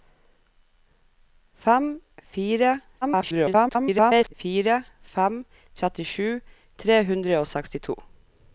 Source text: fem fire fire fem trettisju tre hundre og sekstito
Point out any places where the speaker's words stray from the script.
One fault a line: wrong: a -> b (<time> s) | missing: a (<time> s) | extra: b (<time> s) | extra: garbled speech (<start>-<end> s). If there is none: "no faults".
extra: garbled speech (3.0-4.3 s)